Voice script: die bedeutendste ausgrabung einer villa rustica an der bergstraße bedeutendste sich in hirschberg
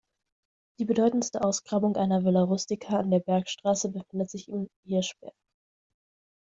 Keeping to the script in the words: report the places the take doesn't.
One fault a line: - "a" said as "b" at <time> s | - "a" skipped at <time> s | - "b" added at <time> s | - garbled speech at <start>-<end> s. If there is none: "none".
- "bedeutendste" said as "befindet" at 3.9 s